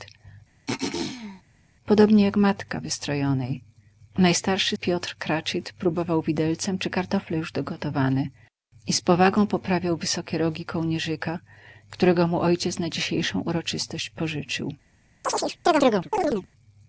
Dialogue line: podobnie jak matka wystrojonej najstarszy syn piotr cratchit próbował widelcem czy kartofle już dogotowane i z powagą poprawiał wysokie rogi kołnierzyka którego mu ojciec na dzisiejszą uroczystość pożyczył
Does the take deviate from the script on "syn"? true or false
true